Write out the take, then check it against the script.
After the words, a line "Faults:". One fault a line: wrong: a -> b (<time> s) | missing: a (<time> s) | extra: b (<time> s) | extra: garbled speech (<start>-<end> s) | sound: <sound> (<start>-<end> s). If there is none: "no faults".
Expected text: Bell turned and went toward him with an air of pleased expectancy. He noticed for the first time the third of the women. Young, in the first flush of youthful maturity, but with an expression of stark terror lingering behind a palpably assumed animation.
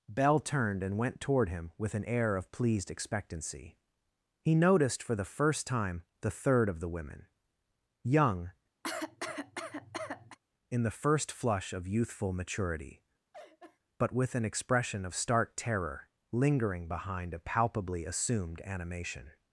Bell turned and went toward him with an air of pleased expectancy. He noticed for the first time the third of the women. Young, in the first flush of youthful maturity, but with an expression of stark terror lingering behind a palpably assumed animation.
Faults:
sound: cough (8.8-10.4 s)
sound: laugh (13.3-13.8 s)